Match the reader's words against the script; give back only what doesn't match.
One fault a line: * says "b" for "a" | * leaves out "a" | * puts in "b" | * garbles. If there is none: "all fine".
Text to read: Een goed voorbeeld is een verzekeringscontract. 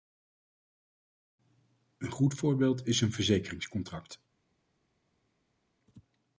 all fine